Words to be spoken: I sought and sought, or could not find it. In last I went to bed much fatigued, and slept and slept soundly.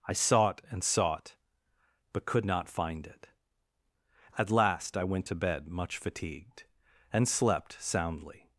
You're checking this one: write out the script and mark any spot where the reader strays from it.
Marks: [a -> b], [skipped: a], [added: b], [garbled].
I sought and sought, [or -> but] could not find it. [In -> At] last I went to bed much fatigued, and slept [skipped: and slept] soundly.